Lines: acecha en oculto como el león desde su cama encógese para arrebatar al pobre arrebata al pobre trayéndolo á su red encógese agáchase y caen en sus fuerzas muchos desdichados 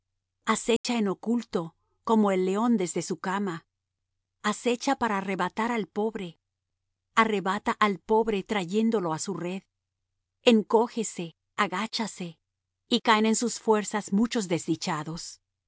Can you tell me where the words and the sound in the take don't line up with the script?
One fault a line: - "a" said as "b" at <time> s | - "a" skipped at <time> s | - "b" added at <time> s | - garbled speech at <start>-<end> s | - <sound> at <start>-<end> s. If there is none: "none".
- dropout at 0.8-0.8 s
- "encógese" said as "acecha" at 4.4 s